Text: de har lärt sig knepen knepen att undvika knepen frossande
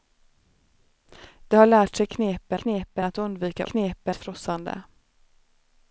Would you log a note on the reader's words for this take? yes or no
no